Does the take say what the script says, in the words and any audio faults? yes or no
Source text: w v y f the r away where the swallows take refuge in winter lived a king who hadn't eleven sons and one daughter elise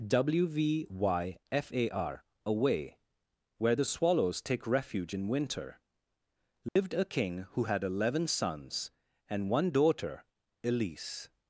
no